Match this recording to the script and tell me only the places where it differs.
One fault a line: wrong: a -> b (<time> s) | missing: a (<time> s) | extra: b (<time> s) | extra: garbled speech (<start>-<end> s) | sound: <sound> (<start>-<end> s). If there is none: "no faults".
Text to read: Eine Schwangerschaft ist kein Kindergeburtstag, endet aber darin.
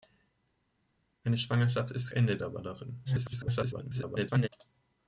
missing: kein Kindergeburtstag (2.1 s)
extra: garbled speech (3.0-4.5 s)